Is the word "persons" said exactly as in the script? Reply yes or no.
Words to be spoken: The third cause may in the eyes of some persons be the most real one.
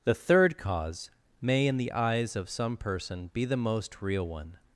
no